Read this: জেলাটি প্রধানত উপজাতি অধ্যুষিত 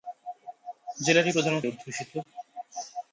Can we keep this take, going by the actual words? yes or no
no